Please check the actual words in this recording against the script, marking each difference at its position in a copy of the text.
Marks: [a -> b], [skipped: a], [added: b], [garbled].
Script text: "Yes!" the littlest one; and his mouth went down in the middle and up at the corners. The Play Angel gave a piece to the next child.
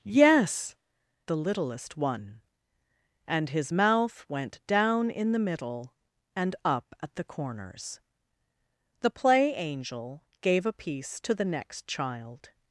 "Yes!" the littlest one; and his mouth went down in the middle and up at the corners. The Play Angel gave a piece to the next child.